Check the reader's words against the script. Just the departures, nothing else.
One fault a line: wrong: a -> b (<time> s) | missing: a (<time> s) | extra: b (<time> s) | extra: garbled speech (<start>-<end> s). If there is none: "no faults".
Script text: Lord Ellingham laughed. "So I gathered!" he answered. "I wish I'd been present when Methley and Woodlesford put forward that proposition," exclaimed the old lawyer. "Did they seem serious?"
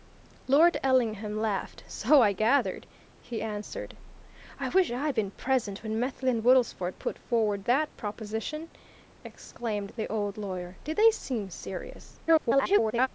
extra: garbled speech (12.3-13.1 s)